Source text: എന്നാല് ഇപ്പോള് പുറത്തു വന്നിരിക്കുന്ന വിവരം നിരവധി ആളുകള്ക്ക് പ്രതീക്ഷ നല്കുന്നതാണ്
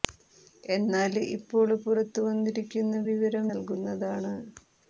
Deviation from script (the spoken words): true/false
true